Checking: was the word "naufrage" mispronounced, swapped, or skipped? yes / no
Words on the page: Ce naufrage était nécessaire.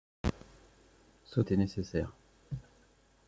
yes